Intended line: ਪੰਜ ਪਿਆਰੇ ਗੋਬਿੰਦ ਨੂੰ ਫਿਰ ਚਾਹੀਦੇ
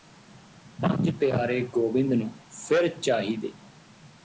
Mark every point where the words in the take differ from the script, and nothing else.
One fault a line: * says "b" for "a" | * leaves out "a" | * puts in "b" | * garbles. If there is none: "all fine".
all fine